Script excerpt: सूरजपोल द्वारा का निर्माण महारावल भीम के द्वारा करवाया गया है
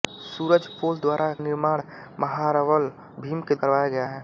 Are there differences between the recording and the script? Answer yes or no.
yes